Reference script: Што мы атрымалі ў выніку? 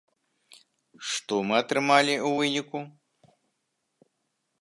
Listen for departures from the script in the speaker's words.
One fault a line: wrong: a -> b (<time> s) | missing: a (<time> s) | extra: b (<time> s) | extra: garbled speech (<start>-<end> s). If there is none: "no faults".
no faults